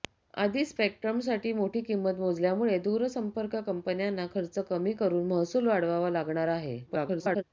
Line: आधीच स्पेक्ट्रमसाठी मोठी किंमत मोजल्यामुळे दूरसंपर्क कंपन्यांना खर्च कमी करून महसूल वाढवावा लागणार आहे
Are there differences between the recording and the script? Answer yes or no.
yes